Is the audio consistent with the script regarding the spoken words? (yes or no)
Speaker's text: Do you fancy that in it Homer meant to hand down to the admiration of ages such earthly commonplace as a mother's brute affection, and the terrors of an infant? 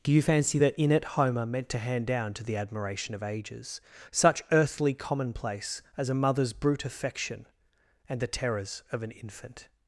yes